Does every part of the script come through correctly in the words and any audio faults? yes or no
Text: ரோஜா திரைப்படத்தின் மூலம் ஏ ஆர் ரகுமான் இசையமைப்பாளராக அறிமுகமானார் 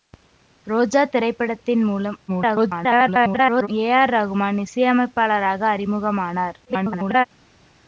no